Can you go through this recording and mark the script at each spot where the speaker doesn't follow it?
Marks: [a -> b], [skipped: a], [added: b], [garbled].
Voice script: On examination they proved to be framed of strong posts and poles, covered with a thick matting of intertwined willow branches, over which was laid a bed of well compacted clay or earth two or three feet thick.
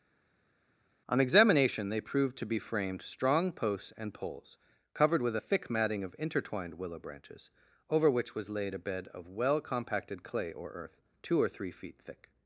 On examination they proved to be framed [skipped: of] strong posts and poles, covered with a thick matting of intertwined willow branches, over which was laid a bed of well compacted clay or earth two or three feet thick.